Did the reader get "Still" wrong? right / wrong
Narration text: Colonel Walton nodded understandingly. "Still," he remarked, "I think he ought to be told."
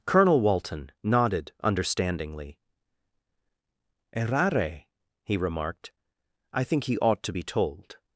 wrong